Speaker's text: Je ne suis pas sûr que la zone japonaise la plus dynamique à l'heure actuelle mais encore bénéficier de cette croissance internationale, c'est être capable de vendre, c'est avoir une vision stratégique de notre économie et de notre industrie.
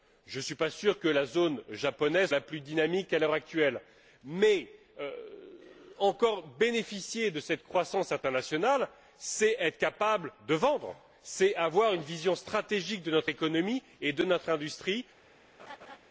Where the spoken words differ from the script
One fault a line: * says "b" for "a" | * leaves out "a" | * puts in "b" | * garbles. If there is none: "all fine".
all fine